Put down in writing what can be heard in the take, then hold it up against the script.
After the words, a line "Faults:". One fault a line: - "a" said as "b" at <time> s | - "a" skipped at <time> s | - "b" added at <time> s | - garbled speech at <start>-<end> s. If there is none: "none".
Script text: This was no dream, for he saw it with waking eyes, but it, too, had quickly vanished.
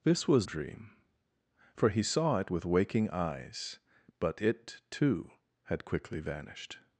This was dream, for he saw it with waking eyes, but it, too, had quickly vanished.
Faults:
- "no" skipped at 0.5 s